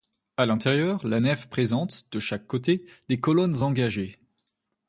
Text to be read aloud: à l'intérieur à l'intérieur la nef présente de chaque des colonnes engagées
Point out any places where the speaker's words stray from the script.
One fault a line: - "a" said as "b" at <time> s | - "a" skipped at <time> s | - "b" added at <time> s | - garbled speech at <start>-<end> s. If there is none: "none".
- "à l'intérieur" skipped at 1.1 s
- "côté" added at 2.5 s